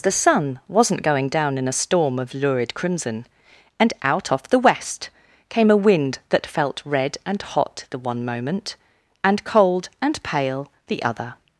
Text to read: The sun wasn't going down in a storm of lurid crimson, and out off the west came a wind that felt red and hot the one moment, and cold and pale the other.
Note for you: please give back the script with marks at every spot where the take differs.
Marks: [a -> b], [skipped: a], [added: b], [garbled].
The sun wasn't going down in a storm of lurid crimson, and out off the west came a wind that felt red and hot the one moment, and cold and pale the other.